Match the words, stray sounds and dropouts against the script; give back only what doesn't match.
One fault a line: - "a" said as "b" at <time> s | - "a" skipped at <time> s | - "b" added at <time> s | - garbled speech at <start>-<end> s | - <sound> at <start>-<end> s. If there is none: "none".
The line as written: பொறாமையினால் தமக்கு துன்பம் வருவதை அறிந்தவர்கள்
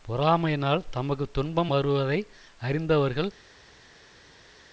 none